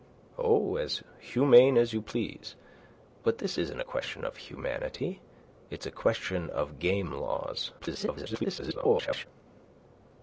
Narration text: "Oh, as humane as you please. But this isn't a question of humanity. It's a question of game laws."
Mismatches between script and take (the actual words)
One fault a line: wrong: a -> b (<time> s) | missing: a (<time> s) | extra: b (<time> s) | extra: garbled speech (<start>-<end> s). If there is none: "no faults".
extra: garbled speech (7.8-9.3 s)